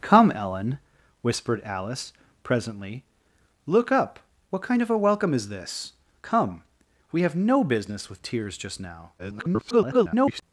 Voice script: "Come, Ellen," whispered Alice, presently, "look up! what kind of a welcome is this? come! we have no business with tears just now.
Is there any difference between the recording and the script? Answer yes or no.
yes